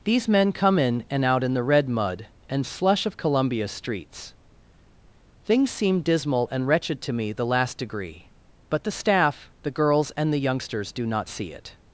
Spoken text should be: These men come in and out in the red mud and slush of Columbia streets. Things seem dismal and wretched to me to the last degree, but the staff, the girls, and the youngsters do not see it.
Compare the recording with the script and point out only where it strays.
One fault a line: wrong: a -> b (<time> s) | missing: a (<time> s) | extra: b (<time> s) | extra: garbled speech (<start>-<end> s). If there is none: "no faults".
missing: to (7.3 s)